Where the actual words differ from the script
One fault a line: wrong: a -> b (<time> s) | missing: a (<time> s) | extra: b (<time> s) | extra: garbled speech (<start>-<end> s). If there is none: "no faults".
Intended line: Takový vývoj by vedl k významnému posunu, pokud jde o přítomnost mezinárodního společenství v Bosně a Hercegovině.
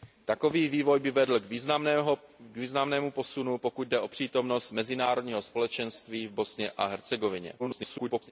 extra: garbled speech (7.6-8.3 s)